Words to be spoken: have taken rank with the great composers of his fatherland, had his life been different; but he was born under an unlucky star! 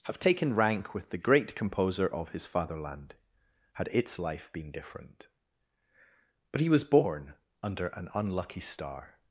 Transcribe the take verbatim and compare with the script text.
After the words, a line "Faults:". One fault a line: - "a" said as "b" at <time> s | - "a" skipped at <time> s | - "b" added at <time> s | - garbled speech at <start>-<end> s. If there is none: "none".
have taken rank with the great composer of his fatherland, had its life been different; but he was born under an unlucky star!
Faults:
- "composers" said as "composer" at 1.6 s
- "his" said as "its" at 3.9 s